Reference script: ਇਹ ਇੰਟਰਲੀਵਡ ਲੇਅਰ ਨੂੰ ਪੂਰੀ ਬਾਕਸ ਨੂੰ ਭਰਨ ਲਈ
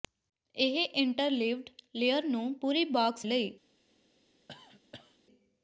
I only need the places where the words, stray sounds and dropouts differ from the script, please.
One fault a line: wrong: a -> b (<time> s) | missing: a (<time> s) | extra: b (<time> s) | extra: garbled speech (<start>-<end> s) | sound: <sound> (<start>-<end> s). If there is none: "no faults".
missing: ਨੂੰ ਭਰਨ (3.3 s)
sound: cough (4.5-5.2 s)